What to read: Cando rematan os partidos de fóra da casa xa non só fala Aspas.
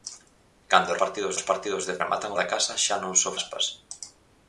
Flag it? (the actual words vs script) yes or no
yes